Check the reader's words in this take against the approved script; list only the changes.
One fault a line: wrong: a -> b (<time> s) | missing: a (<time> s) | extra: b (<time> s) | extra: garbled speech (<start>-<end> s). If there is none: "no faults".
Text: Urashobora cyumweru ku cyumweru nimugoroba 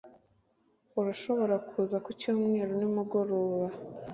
wrong: cyumweru -> kuza (1.7 s)